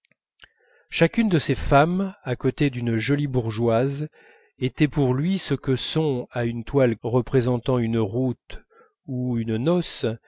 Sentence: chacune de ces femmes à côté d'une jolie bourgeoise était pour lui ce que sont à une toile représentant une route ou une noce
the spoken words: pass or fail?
pass